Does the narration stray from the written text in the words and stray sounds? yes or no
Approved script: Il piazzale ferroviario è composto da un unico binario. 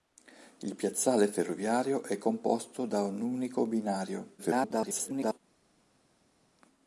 yes